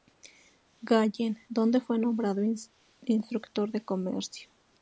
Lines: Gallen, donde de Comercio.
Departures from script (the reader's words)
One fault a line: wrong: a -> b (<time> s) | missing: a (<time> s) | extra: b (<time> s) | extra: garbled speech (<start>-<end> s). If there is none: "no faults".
extra: fue nombrado instructor (1.8 s)